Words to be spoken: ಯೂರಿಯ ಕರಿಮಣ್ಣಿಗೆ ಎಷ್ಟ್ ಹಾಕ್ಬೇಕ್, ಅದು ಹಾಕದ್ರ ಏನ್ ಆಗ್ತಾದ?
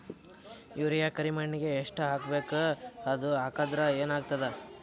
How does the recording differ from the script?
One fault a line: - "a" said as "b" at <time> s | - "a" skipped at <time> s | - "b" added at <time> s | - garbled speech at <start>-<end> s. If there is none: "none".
none